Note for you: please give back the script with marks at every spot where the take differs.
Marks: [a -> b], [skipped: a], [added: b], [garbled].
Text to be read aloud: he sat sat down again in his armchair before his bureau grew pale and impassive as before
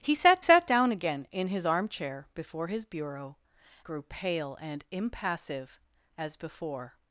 he sat sat down again in his armchair before his bureau grew pale and impassive as before